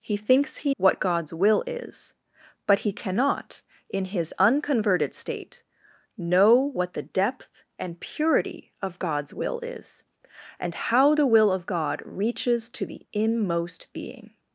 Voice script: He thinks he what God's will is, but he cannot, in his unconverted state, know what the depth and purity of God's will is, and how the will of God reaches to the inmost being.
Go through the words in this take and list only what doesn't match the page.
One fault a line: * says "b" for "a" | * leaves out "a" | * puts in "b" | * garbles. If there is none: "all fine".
all fine